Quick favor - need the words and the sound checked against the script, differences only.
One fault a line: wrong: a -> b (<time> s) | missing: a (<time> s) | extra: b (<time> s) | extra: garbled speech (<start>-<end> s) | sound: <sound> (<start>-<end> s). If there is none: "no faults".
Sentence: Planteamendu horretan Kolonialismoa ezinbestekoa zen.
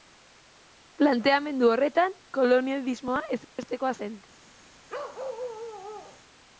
sound: dropout (3.4-3.6 s)
sound: bark (4.9-6.2 s)